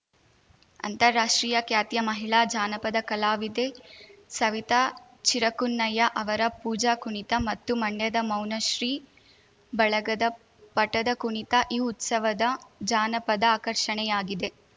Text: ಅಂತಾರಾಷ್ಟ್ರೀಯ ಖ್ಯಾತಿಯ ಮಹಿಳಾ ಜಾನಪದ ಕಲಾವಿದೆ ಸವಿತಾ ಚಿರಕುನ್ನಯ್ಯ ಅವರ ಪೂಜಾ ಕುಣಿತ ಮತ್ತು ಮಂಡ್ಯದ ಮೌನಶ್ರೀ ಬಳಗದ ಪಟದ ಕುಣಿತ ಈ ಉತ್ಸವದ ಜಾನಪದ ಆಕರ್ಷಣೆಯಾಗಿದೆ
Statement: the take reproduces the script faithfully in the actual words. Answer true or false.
true